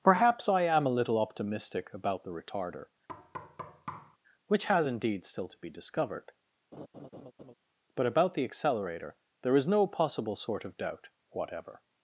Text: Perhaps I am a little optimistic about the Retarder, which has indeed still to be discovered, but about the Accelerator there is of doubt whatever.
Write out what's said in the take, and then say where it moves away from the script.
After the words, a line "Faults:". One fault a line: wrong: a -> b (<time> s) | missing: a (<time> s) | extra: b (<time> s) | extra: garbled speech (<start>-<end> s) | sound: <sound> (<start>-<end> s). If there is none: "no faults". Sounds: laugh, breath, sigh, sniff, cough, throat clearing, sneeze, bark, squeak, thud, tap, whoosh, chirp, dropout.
Perhaps I am a little optimistic about the Retarder, which has indeed still to be discovered, but about the Accelerator there is no possible sort of doubt whatever.
Faults:
sound: thud (3.1-4.2 s)
sound: laugh (6.7-7.5 s)
extra: no possible sort (9.7 s)